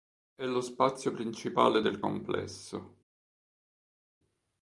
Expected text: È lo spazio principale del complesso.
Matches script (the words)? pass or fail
pass